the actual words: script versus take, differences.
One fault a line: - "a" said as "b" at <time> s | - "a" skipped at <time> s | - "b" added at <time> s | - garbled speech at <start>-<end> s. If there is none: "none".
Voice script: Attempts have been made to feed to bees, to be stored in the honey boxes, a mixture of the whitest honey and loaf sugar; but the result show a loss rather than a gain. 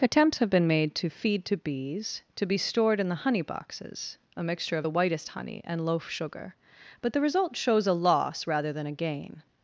- "show" said as "shows" at 7.5 s